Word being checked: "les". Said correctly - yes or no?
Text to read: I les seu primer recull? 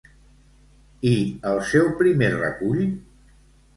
no